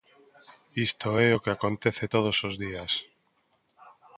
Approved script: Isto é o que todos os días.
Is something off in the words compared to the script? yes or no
yes